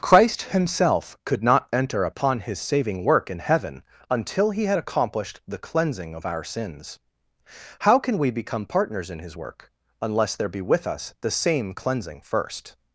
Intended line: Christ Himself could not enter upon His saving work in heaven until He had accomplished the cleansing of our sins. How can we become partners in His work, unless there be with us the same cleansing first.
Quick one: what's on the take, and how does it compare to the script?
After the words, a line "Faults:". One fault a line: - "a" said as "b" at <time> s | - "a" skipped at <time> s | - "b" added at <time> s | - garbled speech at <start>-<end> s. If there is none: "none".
Christ Himself could not enter upon His saving work in heaven until He had accomplished the cleansing of our sins. How can we become partners in His work, unless there be with us the same cleansing first.
Faults:
none